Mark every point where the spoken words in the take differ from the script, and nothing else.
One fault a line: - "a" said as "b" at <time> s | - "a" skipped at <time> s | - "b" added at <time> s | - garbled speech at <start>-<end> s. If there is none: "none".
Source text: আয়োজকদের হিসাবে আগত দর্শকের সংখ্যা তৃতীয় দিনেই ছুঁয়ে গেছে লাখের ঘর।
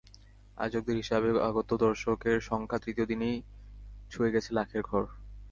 none